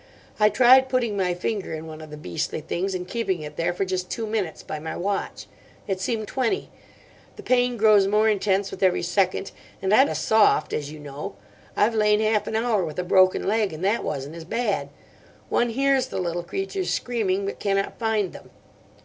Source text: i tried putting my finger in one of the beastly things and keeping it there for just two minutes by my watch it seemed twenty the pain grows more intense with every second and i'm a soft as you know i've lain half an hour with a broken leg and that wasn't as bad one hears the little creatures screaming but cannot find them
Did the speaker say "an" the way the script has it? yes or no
yes